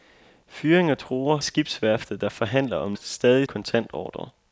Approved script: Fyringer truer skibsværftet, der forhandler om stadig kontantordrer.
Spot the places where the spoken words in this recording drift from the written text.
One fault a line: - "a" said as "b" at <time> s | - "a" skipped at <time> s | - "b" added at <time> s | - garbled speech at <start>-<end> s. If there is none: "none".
none